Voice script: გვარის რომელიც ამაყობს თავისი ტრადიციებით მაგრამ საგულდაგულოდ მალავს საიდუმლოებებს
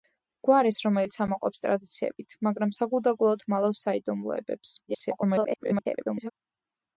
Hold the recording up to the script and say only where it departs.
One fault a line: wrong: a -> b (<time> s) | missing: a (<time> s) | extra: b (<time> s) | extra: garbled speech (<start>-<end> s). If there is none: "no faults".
missing: თავისი (1.6 s)
extra: garbled speech (4.9-6.3 s)